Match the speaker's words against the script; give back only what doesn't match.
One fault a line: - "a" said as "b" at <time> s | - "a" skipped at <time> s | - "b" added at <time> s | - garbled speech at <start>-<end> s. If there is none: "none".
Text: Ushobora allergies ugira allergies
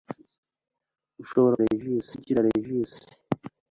none